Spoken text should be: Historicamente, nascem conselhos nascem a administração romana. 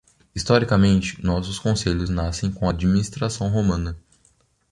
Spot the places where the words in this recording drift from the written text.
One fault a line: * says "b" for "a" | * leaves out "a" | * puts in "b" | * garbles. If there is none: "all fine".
* says "nossos" for "nascem"
* puts in "com"